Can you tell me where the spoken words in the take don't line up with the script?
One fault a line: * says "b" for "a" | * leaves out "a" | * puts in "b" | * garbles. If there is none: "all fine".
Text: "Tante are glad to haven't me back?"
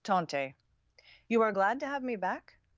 * puts in "you"
* says "have" for "haven't"